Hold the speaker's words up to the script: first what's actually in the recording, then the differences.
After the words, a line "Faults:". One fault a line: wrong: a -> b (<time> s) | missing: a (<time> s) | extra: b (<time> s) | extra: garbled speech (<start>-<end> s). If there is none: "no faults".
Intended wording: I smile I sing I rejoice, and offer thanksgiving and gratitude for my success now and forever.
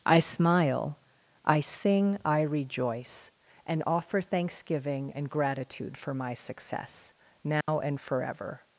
I smile I sing I rejoice, and offer thanksgiving and gratitude for my success now and forever.
Faults:
no faults